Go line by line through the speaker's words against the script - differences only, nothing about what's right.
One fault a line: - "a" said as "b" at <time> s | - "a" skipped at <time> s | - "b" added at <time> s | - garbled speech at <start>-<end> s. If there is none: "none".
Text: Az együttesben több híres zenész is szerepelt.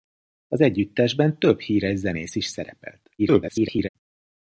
- garbled speech at 3.2-3.9 s